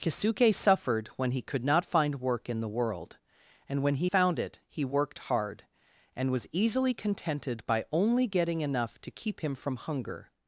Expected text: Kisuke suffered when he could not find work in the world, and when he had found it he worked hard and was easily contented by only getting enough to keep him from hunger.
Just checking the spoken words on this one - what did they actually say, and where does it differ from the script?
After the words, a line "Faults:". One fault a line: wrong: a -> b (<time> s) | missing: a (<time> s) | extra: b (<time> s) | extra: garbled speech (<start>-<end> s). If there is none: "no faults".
Kisuke suffered when he could not find work in the world, and when he found it he worked hard and was easily contented by only getting enough to keep him from hunger.
Faults:
missing: had (4.1 s)